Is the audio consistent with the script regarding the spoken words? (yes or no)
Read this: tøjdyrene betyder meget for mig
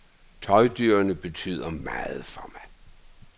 yes